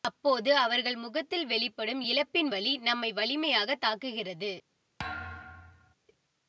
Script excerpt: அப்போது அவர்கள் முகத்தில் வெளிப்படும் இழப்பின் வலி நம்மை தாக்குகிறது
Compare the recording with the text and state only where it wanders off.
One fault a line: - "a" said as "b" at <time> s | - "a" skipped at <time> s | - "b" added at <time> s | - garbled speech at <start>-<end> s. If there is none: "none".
- "வலிமையாகத்" added at 3.1 s